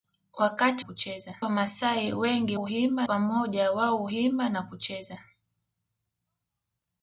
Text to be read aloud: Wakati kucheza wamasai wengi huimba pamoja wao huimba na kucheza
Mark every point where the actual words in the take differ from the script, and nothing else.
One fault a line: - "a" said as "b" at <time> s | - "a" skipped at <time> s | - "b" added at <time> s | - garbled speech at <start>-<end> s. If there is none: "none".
none